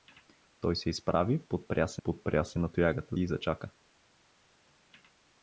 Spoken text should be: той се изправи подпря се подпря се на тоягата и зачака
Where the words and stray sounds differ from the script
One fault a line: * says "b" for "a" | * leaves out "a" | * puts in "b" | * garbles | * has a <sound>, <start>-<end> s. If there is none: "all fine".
all fine